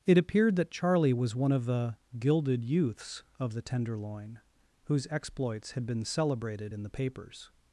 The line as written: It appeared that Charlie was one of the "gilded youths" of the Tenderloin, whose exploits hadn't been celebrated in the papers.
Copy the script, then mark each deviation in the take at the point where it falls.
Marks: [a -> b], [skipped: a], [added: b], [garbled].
It appeared that Charlie was one of the "gilded youths" of the Tenderloin, whose exploits [hadn't -> had] been celebrated in the papers.